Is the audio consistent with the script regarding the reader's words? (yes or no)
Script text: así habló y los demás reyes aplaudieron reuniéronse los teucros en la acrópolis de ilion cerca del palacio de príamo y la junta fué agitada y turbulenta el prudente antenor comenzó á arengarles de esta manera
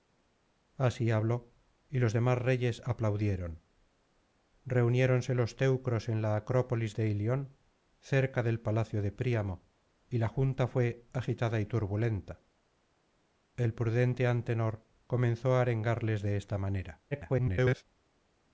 no